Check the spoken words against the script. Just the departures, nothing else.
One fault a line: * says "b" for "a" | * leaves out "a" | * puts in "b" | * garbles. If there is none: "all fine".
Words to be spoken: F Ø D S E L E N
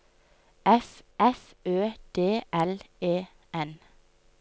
* puts in "f"
* leaves out "S E"